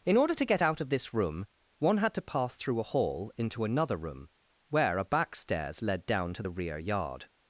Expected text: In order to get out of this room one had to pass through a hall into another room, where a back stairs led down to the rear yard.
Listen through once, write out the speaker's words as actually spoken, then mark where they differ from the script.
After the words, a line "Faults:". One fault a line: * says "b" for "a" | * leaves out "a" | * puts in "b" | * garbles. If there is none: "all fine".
In order to get out of this room one had to pass through a hall into another room, where a back stairs led down to the rear yard.
Faults:
all fine